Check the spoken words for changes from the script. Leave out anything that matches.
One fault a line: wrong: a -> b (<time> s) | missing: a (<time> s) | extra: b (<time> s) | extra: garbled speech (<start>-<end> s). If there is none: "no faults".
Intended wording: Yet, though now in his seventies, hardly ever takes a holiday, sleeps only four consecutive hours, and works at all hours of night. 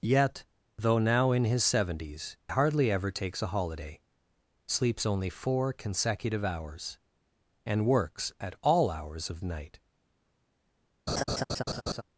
no faults